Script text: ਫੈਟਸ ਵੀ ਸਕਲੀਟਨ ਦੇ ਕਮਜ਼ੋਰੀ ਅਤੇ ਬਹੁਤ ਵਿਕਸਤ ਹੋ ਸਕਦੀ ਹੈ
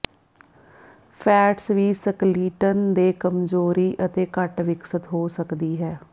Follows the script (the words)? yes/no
no